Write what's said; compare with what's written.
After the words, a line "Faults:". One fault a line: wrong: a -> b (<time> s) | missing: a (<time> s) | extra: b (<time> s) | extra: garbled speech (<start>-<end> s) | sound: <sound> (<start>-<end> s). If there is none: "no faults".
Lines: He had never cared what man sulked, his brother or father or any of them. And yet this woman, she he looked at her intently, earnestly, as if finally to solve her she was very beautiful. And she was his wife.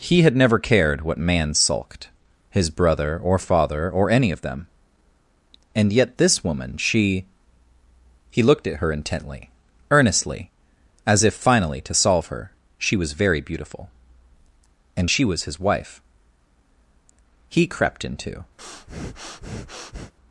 He had never cared what man sulked, his brother or father or any of them. And yet this woman, she he looked at her intently, earnestly, as if finally to solve her she was very beautiful. And she was his wife. He crept into
Faults:
extra: He crept into (17.5 s)
sound: breath (18.6-20.1 s)